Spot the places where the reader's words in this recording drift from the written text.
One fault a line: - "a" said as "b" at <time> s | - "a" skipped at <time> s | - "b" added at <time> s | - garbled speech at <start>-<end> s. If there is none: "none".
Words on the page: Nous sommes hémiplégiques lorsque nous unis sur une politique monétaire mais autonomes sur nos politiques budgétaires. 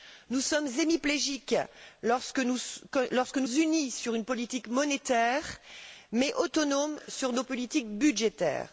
none